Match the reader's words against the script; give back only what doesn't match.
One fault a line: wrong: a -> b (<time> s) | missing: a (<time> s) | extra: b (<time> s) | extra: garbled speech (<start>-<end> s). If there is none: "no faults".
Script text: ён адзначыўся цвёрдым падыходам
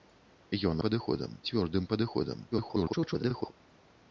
wrong: адзначыўся -> падыходам (0.9 s)
extra: garbled speech (2.5-3.5 s)